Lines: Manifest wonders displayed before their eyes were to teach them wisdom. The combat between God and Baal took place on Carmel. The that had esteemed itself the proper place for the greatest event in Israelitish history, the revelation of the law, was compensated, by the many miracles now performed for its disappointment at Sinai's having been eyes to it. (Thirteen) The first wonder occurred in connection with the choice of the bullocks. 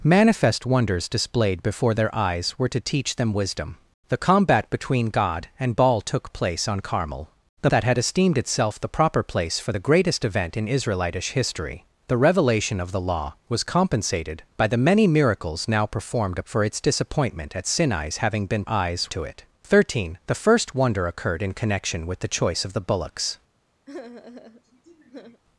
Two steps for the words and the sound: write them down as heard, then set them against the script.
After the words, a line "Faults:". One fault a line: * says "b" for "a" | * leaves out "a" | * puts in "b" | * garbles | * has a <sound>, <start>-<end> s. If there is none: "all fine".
Manifest wonders displayed before their eyes were to teach them wisdom. The combat between God and Baal took place on Carmel. The that had esteemed itself the proper place for the greatest event in Israelitish history, the revelation of the law, was compensated, by the many miracles now performed for its disappointment at Sinai's having been eyes to it. (Thirteen) The first wonder occurred in connection with the choice of the bullocks.
Faults:
* has a sigh, 23.9-25.4 s